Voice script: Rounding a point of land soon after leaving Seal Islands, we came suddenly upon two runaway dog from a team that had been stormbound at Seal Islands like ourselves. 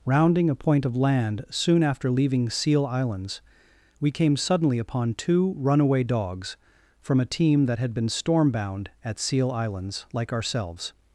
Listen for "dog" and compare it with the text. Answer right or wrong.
wrong